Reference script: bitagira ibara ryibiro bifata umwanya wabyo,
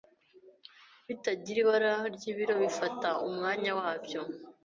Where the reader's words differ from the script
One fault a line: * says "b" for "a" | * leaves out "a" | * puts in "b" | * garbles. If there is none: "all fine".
all fine